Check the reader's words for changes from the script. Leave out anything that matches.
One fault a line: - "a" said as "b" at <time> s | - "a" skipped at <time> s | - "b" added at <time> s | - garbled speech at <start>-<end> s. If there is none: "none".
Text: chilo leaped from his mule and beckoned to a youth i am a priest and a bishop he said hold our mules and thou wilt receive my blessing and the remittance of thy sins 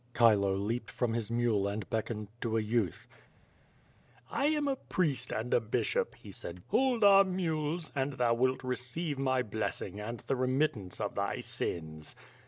none